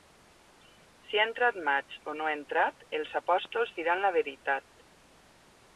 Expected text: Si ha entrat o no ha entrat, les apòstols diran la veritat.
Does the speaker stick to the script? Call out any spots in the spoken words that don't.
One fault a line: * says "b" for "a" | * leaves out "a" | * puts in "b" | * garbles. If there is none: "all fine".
* puts in "maig"
* says "els" for "les"